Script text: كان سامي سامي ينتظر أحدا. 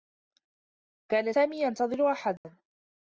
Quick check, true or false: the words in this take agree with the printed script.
false